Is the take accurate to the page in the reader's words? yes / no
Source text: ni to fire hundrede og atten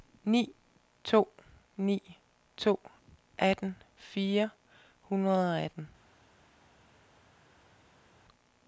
no